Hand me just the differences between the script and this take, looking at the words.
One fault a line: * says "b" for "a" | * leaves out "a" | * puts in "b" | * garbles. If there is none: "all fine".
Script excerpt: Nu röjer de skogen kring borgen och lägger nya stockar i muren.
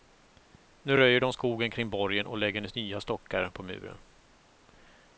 * says "på" for "i"